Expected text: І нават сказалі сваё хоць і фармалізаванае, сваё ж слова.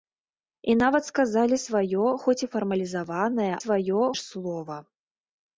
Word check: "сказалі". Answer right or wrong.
right